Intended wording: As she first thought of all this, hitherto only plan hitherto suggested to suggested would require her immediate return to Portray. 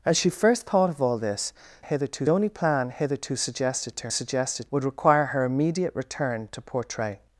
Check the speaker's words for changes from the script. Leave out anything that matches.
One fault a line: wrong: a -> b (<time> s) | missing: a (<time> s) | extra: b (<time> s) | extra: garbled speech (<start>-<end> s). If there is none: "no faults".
no faults